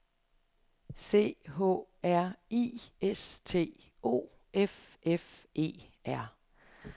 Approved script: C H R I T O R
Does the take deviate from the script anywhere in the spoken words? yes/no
yes